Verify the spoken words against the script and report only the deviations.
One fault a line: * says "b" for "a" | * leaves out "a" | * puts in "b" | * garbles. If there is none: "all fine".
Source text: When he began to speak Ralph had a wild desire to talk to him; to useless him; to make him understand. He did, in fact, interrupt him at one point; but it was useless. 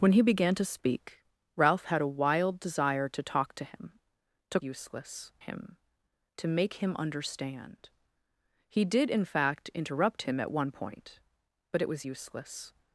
all fine